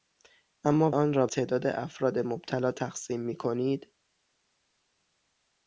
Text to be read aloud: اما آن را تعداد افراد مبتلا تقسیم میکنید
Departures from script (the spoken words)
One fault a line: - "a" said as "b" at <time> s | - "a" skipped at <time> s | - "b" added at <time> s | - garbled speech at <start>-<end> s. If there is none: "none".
none